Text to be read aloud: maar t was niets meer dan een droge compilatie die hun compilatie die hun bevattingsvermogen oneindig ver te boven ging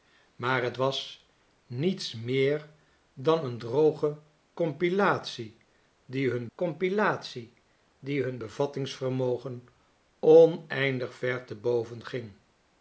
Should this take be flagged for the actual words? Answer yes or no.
no